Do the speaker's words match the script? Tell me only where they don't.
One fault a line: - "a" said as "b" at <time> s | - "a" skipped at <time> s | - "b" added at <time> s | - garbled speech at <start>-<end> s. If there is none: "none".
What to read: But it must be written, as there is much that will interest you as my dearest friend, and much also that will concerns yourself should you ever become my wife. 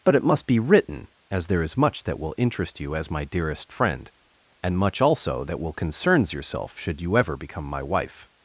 none